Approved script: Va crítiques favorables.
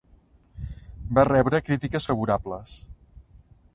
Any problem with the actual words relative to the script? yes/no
yes